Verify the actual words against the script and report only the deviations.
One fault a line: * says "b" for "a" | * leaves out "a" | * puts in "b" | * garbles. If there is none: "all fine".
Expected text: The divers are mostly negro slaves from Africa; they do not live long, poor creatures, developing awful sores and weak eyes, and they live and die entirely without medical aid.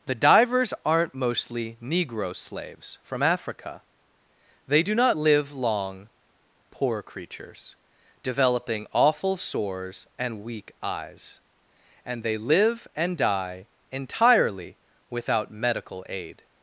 * says "aren't" for "are"